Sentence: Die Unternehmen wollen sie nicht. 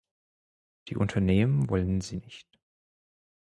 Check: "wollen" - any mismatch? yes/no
no